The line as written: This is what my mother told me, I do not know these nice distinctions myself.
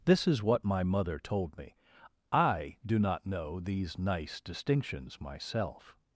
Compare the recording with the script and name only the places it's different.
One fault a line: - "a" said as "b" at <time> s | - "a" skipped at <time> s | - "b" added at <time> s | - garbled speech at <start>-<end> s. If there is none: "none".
none